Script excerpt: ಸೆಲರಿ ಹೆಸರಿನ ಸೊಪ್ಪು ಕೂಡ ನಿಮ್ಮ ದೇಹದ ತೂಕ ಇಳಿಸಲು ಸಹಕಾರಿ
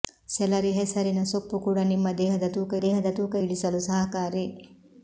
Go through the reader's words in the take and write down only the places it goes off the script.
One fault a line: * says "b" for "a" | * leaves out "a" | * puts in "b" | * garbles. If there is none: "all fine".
* puts in "ದೇಹದ ತೂಕ"